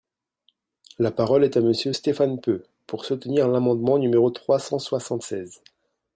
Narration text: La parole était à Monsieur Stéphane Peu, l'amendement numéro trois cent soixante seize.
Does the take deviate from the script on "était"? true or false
true